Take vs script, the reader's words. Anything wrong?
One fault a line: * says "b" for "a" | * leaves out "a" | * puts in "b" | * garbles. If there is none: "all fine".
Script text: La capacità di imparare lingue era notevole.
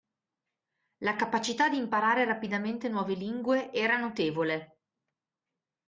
* puts in "rapidamente nuove"